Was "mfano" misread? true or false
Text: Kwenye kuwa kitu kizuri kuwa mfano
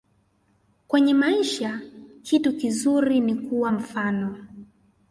false